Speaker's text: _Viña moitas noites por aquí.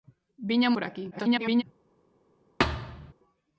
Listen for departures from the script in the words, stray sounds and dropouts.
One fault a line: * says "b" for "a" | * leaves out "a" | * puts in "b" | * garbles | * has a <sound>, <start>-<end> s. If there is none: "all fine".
* leaves out "moitas noites"
* garbles
* has a thud, 2.6-3.1 s